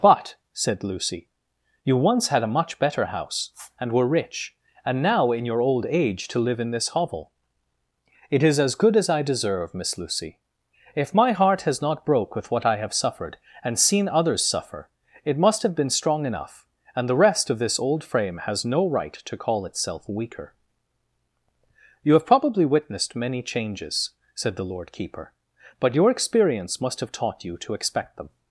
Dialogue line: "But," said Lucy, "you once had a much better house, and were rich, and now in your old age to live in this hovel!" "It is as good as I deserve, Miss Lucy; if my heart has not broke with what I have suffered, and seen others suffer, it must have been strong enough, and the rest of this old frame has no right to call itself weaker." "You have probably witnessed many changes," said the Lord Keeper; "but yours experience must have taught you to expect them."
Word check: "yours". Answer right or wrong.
wrong